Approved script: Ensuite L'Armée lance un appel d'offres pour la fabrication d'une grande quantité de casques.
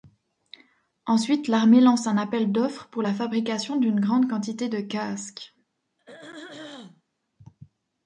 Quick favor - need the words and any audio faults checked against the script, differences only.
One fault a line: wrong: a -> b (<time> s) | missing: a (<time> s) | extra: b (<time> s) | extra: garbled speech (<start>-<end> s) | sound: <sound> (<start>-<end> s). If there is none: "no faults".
sound: throat clearing (6.0-7.0 s)